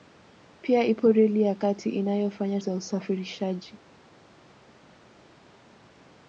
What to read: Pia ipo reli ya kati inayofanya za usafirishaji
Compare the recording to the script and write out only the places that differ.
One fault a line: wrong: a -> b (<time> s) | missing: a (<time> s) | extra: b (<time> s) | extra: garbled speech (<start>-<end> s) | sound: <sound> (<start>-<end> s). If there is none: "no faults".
no faults